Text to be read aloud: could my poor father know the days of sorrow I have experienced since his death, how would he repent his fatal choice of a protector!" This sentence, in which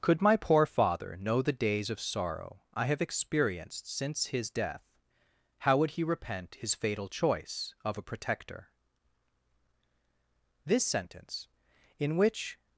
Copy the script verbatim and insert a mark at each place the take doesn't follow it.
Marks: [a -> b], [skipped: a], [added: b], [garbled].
could my poor father know the days of sorrow I have experienced since his death, how would he repent his fatal choice of a protector!" This sentence, in which